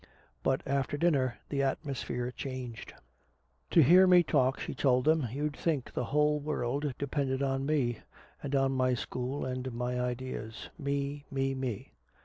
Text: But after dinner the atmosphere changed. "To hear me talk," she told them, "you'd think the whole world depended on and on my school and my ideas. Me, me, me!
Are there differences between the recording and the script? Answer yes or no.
yes